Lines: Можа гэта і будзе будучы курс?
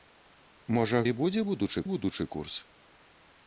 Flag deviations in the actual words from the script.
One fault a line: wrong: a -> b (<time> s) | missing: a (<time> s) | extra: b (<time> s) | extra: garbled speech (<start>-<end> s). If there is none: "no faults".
missing: гэта (1.0 s)
extra: будучы (1.9 s)